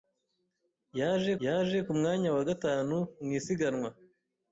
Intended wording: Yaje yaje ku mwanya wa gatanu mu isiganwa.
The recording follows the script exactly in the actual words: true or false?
true